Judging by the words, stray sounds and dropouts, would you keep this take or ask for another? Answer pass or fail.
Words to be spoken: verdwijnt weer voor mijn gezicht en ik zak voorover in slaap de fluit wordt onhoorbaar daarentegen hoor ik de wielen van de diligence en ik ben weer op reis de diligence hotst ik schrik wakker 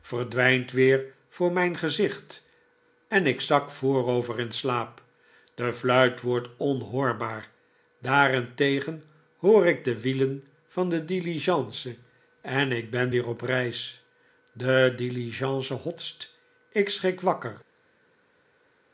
pass